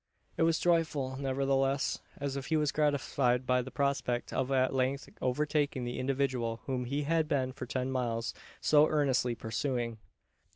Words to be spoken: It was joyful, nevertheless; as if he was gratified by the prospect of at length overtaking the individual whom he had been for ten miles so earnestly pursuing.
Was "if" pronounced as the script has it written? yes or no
yes